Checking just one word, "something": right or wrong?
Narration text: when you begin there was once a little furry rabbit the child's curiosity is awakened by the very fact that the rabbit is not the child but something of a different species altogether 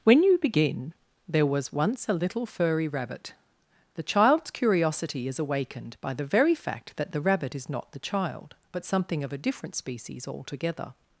right